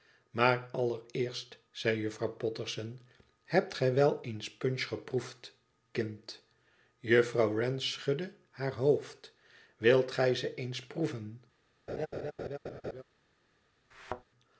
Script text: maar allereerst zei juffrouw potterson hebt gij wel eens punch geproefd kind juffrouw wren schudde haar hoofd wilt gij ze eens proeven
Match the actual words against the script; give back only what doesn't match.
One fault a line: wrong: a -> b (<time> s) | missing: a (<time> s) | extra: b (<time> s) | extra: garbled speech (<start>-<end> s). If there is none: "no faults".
no faults